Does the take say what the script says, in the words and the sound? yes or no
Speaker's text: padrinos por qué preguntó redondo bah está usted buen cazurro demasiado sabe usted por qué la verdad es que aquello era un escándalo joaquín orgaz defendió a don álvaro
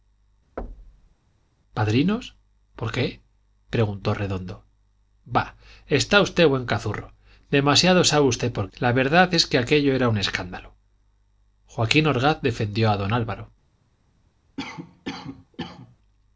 no